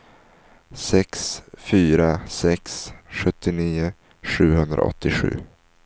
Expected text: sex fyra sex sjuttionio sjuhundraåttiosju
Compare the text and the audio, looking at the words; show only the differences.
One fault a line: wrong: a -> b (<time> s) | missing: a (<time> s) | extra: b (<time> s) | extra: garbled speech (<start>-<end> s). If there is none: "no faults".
no faults